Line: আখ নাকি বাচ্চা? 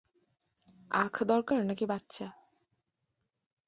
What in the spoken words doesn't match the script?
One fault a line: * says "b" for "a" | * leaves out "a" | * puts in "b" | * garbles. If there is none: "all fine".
* puts in "দরকার"